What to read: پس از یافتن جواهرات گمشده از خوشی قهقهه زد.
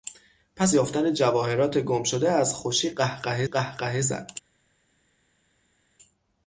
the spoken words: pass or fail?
fail